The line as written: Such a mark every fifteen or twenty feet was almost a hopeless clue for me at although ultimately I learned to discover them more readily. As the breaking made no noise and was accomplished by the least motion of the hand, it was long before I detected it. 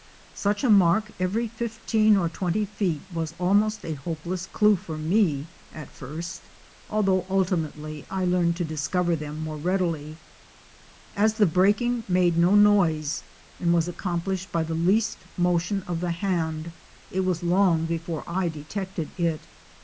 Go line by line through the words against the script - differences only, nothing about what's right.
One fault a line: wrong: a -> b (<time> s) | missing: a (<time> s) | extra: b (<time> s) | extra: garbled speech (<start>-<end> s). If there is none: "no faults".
extra: first (5.9 s)